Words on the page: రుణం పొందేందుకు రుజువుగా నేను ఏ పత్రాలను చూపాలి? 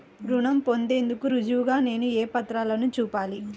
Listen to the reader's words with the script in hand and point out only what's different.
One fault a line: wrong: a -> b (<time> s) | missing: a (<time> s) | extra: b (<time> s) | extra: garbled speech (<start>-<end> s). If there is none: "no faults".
no faults